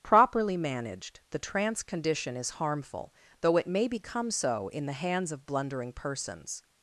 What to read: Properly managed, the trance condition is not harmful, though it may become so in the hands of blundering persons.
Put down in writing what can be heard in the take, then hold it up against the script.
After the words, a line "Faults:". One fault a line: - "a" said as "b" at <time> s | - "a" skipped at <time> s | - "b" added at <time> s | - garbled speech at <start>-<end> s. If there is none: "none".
Properly managed, the trance condition is harmful, though it may become so in the hands of blundering persons.
Faults:
- "not" skipped at 2.5 s